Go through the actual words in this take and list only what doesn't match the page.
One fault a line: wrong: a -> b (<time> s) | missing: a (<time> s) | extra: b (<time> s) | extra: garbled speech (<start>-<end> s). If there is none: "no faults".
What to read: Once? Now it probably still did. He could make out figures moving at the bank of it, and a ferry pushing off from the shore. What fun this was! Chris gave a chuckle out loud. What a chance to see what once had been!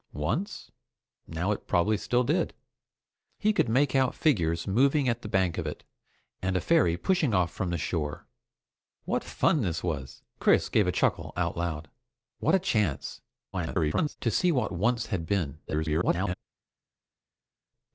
extra: garbled speech (13.5-14.2 s)
extra: garbled speech (15.7-16.3 s)